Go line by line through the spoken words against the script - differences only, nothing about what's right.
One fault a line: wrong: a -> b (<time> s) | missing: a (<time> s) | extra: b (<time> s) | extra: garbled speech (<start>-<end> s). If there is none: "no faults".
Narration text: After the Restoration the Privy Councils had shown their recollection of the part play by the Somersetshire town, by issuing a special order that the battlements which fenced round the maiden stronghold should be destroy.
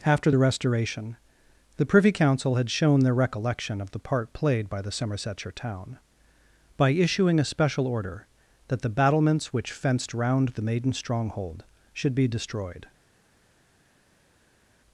wrong: Councils -> Council (2.1 s)
wrong: play -> played (4.3 s)
wrong: destroy -> destroyed (12.3 s)